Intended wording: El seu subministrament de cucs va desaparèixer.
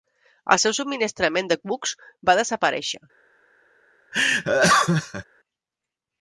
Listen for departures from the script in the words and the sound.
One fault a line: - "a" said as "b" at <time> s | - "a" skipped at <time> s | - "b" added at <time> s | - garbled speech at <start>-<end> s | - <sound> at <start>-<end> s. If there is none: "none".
- laugh at 4.1-5.2 s